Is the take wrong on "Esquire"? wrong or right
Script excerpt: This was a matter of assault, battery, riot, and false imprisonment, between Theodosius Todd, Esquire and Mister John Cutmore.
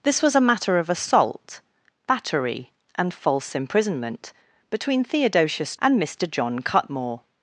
wrong